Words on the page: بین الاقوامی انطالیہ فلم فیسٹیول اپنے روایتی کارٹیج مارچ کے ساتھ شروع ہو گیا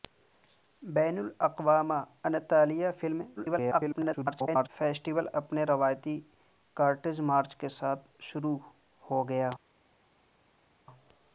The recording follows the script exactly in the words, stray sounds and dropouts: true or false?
false